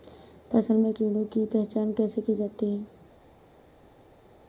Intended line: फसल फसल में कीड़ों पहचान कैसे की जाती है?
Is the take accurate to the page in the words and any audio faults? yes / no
no